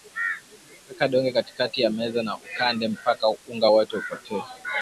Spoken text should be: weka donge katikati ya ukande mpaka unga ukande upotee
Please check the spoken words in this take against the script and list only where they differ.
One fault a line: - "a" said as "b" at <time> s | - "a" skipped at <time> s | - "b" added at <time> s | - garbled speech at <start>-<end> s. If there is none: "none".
- "meza na" added at 1.9 s
- "ukande" said as "wote" at 3.7 s